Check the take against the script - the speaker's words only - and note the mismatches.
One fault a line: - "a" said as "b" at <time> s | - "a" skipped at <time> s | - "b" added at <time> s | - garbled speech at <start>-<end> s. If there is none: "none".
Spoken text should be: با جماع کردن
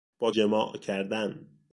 none